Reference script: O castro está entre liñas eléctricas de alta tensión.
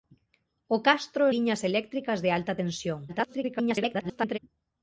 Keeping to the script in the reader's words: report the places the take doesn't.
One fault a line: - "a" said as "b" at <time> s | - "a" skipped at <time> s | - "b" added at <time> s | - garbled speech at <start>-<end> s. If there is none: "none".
- "está entre" skipped at 1.2 s
- garbled speech at 3.1-4.4 s